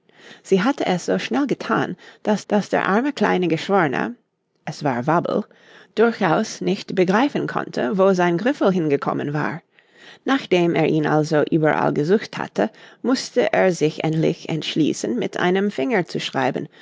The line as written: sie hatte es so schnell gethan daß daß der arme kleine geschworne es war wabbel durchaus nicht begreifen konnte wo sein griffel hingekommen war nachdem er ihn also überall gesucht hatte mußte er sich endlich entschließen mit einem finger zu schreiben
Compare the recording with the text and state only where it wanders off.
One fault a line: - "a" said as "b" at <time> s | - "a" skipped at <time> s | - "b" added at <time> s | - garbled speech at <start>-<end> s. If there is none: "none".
none